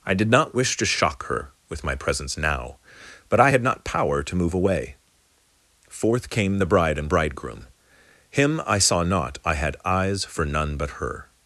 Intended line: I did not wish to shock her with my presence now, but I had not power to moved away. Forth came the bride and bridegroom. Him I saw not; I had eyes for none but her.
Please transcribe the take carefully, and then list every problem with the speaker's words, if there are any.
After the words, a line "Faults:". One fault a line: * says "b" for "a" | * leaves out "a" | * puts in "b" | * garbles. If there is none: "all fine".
I did not wish to shock her with my presence now, but I had not power to move away. Forth came the bride and bridegroom. Him I saw not; I had eyes for none but her.
Faults:
* says "move" for "moved"